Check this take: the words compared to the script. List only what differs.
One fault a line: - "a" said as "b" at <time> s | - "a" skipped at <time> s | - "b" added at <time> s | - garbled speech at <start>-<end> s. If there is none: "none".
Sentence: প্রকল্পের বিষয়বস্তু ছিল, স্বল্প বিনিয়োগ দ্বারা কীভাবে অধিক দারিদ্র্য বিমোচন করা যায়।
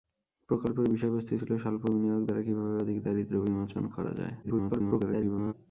- garbled speech at 4.4-5.5 s